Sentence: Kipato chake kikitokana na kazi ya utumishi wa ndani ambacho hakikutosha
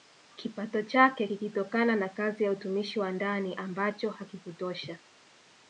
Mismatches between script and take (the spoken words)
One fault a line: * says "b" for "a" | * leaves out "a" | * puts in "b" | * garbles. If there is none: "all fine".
all fine